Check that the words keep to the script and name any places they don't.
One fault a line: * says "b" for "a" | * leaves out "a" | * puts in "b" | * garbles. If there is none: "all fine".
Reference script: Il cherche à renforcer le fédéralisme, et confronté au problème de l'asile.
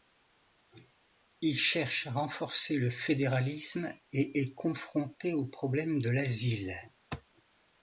* puts in "est"